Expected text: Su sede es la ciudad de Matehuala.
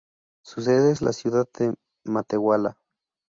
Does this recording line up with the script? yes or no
yes